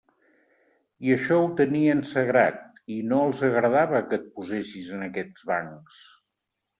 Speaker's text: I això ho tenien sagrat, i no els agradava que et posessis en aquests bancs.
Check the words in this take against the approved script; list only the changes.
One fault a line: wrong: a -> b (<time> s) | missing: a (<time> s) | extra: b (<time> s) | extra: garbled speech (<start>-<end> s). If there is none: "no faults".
no faults